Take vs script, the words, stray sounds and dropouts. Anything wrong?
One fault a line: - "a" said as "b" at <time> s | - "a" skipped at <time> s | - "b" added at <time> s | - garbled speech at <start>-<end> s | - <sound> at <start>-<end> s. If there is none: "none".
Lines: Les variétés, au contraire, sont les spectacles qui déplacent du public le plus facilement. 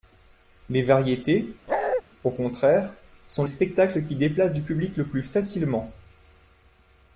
- bark at 1.7-2.0 s
- "les" skipped at 3.4 s